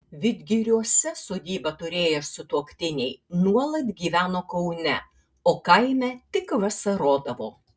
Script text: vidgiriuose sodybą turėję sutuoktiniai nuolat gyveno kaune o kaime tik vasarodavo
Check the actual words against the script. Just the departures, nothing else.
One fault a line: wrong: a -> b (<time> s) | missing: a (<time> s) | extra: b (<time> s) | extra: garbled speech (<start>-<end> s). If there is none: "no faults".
no faults